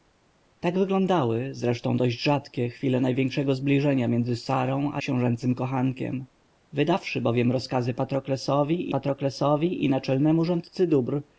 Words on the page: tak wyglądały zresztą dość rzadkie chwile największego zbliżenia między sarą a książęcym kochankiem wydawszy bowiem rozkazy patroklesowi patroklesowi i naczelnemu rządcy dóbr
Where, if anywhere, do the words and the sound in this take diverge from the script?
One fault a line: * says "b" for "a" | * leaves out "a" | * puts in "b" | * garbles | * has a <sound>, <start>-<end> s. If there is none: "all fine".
all fine